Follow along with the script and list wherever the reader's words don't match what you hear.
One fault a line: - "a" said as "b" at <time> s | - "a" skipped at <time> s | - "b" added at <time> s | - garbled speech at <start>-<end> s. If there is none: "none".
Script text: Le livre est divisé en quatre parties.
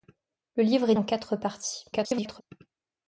- "divisé" skipped at 0.9 s
- garbled speech at 1.9-2.4 s